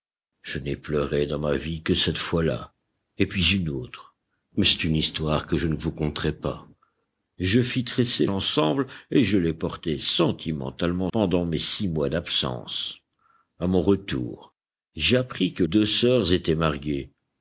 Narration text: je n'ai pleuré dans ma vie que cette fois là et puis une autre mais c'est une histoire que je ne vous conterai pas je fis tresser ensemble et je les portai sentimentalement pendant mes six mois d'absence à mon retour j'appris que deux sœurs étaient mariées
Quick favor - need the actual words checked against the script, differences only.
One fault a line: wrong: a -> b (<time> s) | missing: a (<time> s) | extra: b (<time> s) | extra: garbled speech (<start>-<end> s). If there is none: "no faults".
no faults